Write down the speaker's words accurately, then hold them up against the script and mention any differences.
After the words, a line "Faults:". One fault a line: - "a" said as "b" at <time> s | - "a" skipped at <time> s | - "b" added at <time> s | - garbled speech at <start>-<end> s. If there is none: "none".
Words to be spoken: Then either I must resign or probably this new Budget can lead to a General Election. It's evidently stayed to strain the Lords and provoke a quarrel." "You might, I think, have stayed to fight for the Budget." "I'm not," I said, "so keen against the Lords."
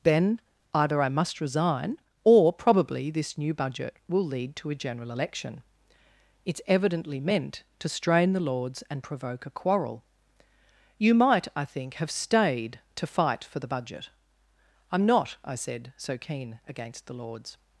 Then either I must resign or probably this new Budget will lead to a General Election. It's evidently meant to strain the Lords and provoke a quarrel." "You might, I think, have stayed to fight for the Budget." "I'm not," I said, "so keen against the Lords."
Faults:
- "can" said as "will" at 4.1 s
- "stayed" said as "meant" at 7.2 s